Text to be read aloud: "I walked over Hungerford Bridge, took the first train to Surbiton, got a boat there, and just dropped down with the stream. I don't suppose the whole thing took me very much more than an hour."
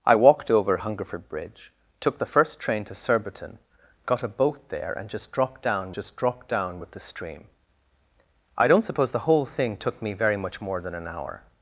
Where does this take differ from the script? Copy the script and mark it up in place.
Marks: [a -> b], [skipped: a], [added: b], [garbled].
"I walked over Hungerford Bridge, took the first train to Surbiton, got a boat there, and just dropped down [added: just dropped down] with the stream. I don't suppose the whole thing took me very much more than an hour."